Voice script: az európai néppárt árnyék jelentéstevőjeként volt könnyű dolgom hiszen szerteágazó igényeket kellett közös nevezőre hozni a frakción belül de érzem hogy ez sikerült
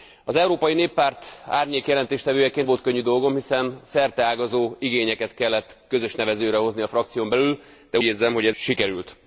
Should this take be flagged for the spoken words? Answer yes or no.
no